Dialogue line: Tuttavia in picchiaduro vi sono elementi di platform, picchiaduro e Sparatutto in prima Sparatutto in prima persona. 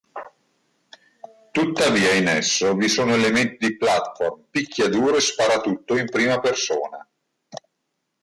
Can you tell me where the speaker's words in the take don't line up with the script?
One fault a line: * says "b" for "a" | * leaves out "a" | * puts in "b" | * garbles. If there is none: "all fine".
* says "esso" for "picchiaduro"
* leaves out "Sparatutto in prima"